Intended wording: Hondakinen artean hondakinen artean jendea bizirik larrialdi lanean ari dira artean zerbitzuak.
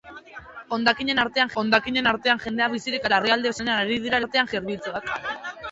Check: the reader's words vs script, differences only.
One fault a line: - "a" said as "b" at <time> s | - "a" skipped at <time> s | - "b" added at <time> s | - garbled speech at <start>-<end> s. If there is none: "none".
none